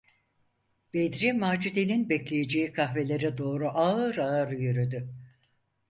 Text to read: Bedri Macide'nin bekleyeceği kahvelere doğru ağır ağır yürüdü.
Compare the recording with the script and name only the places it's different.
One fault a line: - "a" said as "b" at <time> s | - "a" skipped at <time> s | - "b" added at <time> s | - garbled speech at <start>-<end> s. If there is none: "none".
none